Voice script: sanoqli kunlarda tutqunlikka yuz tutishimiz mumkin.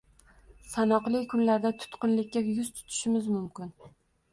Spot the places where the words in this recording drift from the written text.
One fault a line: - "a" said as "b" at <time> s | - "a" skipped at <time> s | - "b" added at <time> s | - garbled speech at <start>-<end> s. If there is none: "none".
none